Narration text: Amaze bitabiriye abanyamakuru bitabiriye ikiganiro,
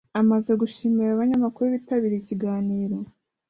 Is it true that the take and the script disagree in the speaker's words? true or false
true